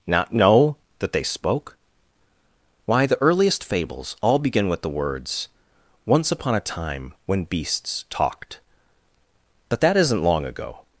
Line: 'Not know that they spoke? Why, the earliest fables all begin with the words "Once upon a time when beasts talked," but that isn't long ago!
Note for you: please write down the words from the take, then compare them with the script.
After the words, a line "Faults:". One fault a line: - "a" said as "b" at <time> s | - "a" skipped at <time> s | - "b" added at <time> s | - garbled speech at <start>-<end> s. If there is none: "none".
'Not know that they spoke? Why, the earliest fables all begin with the words "Once upon a time when beasts talked," but that isn't long ago!
Faults:
none